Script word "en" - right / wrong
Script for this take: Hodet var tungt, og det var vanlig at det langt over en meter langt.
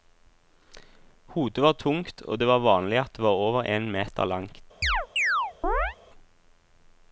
right